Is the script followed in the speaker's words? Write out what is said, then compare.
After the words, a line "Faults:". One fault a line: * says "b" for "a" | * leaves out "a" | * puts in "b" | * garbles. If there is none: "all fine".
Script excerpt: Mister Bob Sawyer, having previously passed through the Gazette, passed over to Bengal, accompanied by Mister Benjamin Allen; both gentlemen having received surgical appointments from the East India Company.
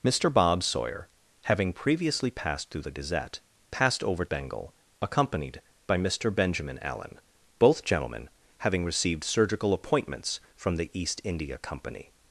Mister Bob Sawyer, having previously passed through the Gazette, passed over Bengal, accompanied by Mister Benjamin Allen; both gentlemen having received surgical appointments from the East India Company.
Faults:
* leaves out "to"